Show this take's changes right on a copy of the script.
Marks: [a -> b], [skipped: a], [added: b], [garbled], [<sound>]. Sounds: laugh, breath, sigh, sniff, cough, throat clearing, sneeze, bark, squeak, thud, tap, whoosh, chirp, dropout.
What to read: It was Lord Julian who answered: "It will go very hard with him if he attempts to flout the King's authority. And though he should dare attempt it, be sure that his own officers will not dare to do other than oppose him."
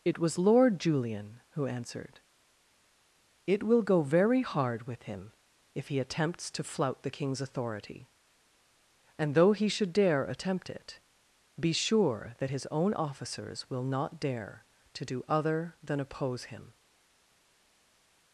It was Lord Julian who answered: "It will go very hard with him if he attempts to flout the King's authority. And though he should dare attempt it, be sure that his own officers will not dare to do other than oppose him."